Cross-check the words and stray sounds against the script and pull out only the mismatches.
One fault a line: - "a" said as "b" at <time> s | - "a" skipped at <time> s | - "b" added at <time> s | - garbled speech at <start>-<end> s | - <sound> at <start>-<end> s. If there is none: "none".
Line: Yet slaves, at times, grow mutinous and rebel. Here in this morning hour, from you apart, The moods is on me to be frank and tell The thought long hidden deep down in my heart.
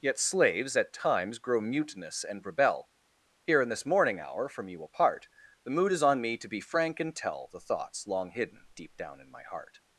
- "moods" said as "mood" at 5.8 s
- "thought" said as "thoughts" at 7.6 s